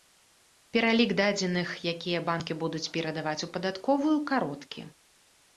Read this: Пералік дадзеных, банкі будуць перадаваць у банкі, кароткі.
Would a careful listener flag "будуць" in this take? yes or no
no